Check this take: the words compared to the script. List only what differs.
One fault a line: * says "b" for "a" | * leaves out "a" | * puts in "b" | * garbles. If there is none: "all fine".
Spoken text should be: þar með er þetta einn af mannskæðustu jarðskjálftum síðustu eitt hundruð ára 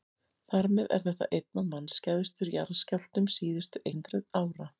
* leaves out "eitt"